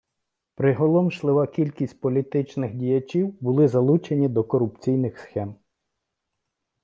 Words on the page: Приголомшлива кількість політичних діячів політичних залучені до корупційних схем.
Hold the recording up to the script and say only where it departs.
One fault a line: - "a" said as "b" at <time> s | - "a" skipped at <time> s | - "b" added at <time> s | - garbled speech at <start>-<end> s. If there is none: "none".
- "політичних" said as "були" at 3.4 s